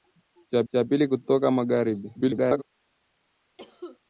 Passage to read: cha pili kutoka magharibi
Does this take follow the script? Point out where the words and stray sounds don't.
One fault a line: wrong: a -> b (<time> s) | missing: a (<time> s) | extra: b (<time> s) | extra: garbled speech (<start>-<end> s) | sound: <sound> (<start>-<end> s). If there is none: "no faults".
extra: cha (0.7 s)
extra: garbled speech (2.1-2.6 s)
sound: cough (3.6-4.0 s)